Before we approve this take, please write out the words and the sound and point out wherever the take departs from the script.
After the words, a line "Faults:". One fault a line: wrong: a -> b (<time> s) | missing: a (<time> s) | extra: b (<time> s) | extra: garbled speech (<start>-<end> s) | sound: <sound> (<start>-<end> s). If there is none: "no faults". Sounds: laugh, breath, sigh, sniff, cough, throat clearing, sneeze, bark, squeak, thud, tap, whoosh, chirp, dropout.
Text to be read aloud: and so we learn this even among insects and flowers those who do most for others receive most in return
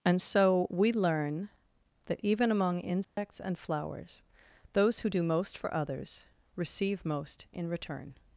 and so we learn that even among insects and flowers those who do most for others receive most in return
Faults:
wrong: this -> that (2.1 s)
sound: dropout (3.0-3.2 s)